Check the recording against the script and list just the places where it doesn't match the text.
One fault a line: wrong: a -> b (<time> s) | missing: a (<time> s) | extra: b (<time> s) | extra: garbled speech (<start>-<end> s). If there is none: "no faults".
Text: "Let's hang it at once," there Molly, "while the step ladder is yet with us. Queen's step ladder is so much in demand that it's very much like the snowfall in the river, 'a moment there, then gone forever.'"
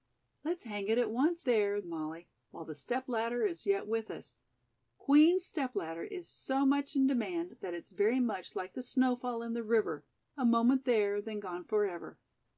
no faults